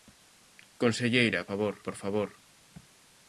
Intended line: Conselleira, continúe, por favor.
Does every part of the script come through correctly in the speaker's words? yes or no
no